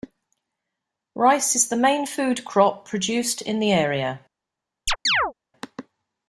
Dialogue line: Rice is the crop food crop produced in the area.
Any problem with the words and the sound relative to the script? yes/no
yes